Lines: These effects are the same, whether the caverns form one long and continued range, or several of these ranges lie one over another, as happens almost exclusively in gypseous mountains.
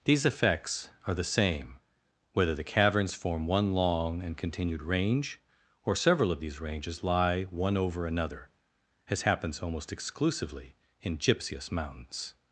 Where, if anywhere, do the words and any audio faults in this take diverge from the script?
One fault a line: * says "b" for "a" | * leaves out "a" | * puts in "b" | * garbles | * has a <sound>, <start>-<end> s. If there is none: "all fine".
all fine